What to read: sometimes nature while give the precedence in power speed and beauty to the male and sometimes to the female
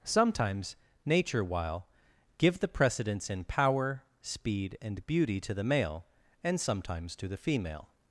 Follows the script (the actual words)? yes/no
yes